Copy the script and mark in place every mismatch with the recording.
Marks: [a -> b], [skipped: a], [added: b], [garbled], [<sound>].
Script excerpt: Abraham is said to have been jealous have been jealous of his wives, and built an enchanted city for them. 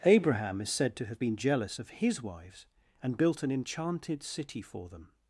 Abraham is said to have been jealous [skipped: have been jealous] of his wives, and built an enchanted city for them.